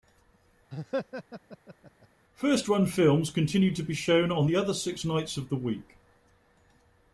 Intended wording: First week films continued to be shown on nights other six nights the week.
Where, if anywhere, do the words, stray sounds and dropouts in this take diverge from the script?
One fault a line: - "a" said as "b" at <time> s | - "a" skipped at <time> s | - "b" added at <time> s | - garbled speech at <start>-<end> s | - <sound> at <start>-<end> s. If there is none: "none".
- laugh at 0.7-2.1 s
- "week" said as "run" at 2.7 s
- "nights" said as "the" at 4.5 s
- "of" added at 5.4 s